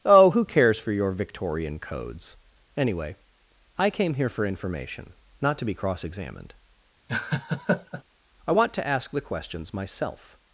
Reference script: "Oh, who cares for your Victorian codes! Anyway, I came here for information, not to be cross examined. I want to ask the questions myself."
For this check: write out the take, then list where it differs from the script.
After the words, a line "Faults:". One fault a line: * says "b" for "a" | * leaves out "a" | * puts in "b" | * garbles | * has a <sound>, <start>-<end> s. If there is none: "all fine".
"Oh, who cares for your Victorian codes! Anyway, I came here for information, not to be cross examined. I want to ask the questions myself."
Faults:
* has a laugh, 7.1-8.0 s